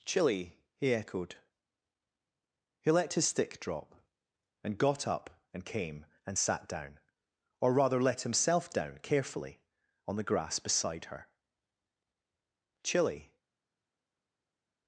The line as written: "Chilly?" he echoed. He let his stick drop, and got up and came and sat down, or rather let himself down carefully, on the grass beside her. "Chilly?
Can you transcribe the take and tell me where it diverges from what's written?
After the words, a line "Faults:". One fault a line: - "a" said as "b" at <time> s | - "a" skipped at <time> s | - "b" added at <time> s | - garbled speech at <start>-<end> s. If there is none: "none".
"Chilly?" he echoed. He let his stick drop, and got up and came and sat down, or rather let himself down carefully, on the grass beside her. "Chilly?
Faults:
none